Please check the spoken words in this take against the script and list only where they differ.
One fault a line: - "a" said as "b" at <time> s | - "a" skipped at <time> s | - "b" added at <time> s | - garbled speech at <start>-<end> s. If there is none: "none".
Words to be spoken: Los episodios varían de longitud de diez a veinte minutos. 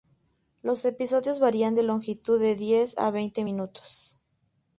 none